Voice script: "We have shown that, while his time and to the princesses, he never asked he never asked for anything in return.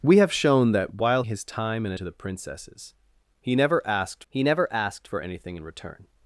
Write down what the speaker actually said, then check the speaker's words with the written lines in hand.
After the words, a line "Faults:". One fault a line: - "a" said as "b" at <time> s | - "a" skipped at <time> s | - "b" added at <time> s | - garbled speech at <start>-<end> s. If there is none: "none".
"We have shown that, while his time and to the princesses, he never asked he never asked for anything in return.
Faults:
none